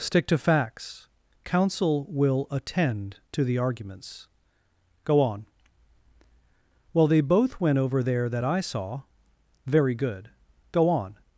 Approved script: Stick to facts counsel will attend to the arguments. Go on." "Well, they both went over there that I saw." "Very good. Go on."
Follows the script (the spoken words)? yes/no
yes